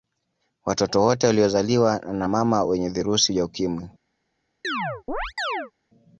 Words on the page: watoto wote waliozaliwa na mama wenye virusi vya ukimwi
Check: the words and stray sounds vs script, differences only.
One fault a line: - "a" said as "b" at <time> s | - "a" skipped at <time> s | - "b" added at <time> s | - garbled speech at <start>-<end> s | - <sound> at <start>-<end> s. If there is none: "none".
- chirp at 4.6-5.7 s